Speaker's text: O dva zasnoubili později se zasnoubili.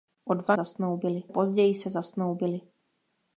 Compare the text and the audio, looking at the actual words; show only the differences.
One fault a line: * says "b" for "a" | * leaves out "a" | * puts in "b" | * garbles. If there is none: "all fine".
all fine